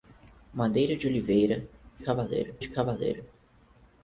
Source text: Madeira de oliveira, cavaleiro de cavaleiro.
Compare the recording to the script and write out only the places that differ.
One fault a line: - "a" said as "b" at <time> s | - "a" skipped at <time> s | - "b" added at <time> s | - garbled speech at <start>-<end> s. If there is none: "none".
none